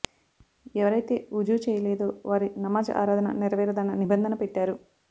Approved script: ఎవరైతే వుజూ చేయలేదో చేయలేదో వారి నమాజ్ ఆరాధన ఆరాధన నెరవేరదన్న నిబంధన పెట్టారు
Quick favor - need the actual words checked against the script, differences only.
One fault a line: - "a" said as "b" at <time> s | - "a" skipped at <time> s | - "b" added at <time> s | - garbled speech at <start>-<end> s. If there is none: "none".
- "చేయలేదో" skipped at 2.1 s
- "ఆరాధన" skipped at 3.4 s